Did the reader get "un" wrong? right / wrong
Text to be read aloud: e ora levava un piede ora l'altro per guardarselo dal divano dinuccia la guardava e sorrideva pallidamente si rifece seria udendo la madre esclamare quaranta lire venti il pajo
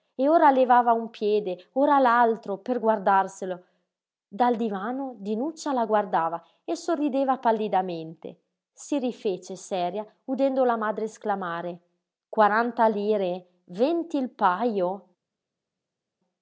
right